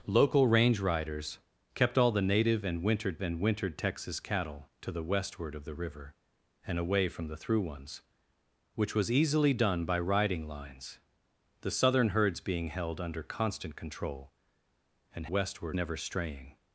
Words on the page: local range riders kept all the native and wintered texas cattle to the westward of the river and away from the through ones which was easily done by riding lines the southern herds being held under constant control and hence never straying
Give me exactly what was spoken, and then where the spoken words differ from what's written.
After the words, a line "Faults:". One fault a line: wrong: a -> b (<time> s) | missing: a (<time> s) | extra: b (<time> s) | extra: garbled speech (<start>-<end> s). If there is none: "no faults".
local range riders kept all the native and wintered and wintered texas cattle to the westward of the river and away from the through ones which was easily done by riding lines the southern herds being held under constant control and westward never straying
Faults:
extra: and wintered (3.2 s)
wrong: hence -> westward (15.3 s)